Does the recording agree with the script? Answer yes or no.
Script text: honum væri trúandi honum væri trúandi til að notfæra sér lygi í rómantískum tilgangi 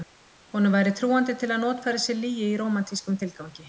no